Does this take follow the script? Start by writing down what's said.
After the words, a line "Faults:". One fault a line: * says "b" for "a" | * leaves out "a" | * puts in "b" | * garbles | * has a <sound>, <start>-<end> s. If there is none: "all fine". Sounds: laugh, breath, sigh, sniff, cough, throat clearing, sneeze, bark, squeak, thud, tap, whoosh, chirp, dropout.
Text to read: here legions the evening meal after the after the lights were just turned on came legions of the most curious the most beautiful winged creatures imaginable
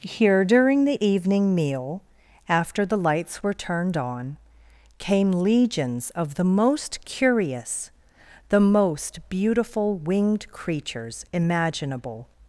here during the evening meal after the lights were turned on came legions of the most curious the most beautiful winged creatures imaginable
Faults:
* says "during" for "legions"
* leaves out "after the"
* leaves out "just"